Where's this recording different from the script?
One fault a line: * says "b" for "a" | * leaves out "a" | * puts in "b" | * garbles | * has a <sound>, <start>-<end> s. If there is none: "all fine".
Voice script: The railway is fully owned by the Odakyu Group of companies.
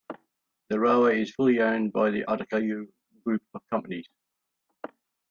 all fine